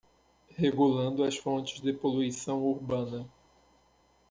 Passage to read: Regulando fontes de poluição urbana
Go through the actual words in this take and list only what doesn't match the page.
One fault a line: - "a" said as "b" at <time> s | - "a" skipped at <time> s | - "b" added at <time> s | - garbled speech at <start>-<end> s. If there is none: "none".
- "as" added at 1.2 s